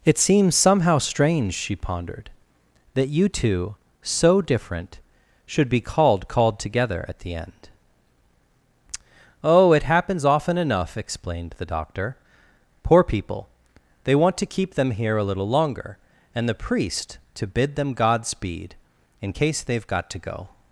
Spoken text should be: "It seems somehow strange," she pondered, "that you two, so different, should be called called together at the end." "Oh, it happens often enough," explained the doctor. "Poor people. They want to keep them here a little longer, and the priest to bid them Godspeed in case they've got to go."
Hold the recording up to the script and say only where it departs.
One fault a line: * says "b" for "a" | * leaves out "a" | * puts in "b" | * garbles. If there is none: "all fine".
all fine